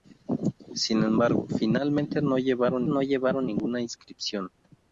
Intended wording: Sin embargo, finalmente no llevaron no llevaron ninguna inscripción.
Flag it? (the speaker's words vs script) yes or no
no